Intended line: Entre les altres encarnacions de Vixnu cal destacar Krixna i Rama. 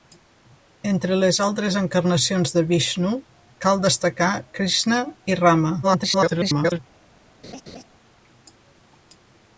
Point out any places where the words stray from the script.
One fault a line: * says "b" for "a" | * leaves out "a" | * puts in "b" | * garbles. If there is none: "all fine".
* garbles